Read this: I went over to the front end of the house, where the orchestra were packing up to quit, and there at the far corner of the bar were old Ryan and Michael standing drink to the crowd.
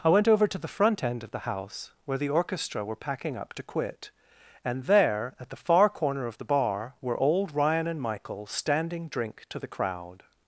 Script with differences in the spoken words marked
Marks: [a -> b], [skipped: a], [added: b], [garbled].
I went over to the front end of the house, where the orchestra were packing up to quit, and there at the far corner of the bar were old Ryan and Michael standing drink to the crowd.